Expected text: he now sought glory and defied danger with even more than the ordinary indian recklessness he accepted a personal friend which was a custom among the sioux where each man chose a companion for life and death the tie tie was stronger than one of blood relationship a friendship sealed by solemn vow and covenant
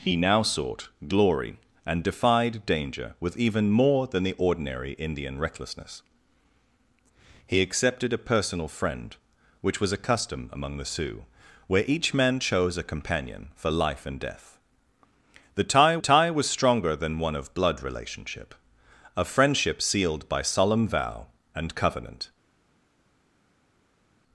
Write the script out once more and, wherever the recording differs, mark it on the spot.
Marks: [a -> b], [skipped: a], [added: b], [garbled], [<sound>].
he now sought glory and defied danger with even more than the ordinary indian recklessness he accepted a personal friend which was a custom among the sioux where each man chose a companion for life and death the tie tie was stronger than one of blood relationship a friendship sealed by solemn vow and covenant